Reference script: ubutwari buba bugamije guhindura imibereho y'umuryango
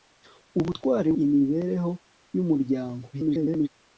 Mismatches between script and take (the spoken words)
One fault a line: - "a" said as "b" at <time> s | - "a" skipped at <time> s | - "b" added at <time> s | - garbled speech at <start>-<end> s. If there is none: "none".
- "buba bugamije guhindura" skipped at 1.1 s
- garbled speech at 3.1-3.7 s